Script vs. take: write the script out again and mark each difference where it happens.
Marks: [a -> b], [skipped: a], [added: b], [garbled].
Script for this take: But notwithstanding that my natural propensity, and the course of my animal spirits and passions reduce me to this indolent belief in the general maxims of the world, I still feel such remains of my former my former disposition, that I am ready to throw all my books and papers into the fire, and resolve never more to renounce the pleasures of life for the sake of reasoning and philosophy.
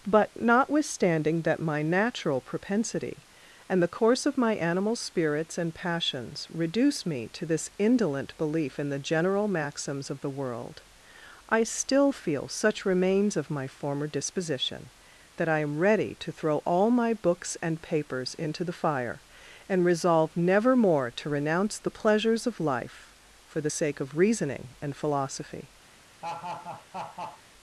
But notwithstanding that my natural propensity, and the course of my animal spirits and passions reduce me to this indolent belief in the general maxims of the world, I still feel such remains of my former [skipped: my former] disposition, that I am ready to throw all my books and papers into the fire, and resolve never more to renounce the pleasures of life for the sake of reasoning and philosophy.